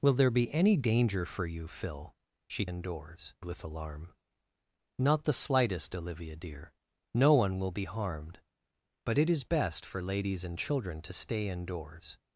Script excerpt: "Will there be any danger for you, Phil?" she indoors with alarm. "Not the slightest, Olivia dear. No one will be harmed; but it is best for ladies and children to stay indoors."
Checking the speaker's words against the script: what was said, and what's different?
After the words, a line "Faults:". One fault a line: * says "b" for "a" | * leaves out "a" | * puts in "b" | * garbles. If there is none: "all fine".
"Will there be any danger for you, Phil?" she indoors with alarm. "Not the slightest, Olivia dear. No one will be harmed; but it is best for ladies and children to stay indoors."
Faults:
all fine